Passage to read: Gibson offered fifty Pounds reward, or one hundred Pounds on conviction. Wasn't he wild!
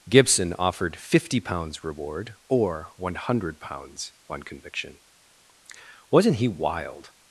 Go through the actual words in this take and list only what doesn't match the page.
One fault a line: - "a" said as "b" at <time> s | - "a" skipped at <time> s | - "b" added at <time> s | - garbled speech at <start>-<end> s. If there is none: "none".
none